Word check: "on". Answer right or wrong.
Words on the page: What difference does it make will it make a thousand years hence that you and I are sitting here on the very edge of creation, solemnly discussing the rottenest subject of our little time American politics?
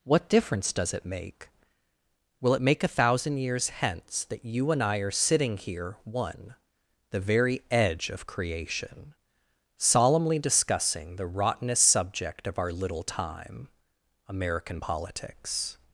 wrong